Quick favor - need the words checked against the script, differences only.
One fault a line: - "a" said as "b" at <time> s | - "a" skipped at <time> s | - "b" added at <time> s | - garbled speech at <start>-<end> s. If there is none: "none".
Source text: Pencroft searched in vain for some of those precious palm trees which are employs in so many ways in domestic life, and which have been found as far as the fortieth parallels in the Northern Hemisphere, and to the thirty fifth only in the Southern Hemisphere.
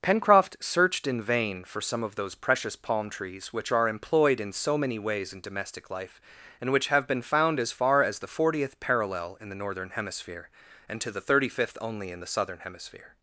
- "employs" said as "employed" at 3.9 s
- "parallels" said as "parallel" at 8.8 s